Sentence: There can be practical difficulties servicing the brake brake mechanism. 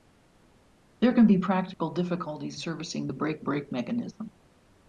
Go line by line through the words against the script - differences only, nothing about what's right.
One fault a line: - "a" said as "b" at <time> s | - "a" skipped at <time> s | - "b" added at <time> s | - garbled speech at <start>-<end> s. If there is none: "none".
none